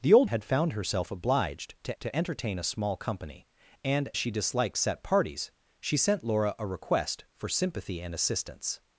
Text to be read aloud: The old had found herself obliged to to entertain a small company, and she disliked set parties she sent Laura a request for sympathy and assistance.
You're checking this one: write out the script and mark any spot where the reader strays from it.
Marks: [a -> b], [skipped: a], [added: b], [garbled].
The old had found herself obliged to to entertain a small company, and she disliked set parties she sent Laura a request for sympathy and assistance.